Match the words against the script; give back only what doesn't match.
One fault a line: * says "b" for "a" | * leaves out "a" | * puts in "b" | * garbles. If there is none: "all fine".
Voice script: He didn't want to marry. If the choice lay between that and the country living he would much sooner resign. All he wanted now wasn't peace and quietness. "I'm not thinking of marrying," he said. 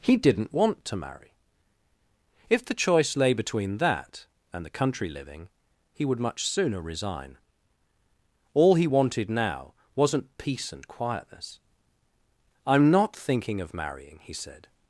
all fine